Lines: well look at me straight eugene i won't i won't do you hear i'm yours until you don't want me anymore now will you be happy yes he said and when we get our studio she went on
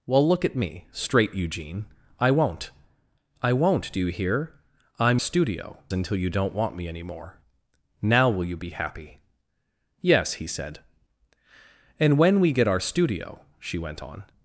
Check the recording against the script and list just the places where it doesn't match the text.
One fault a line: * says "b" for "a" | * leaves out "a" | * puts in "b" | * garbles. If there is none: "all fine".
* says "studio" for "yours"